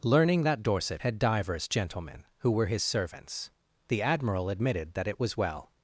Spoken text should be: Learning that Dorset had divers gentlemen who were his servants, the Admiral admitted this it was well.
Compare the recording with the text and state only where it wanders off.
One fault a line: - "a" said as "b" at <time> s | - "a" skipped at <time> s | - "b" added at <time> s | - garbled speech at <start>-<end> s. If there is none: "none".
- "this" said as "that" at 4.9 s